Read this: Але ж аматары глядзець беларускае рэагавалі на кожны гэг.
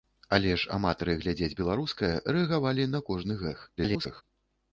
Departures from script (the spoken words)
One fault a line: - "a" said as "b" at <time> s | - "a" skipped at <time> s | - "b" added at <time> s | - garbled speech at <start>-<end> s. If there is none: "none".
- garbled speech at 3.8-4.2 s